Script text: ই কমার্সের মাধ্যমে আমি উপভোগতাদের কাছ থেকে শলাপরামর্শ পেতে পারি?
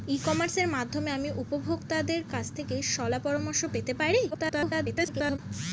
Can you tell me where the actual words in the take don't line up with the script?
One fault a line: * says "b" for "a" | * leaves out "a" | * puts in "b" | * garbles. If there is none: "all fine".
* garbles